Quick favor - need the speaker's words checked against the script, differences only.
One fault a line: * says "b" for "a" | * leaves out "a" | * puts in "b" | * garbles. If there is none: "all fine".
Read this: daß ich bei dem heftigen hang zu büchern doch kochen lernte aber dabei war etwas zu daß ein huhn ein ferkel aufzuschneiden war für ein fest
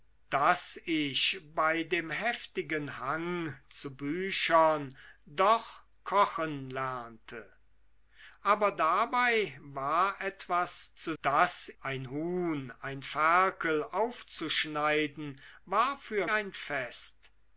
all fine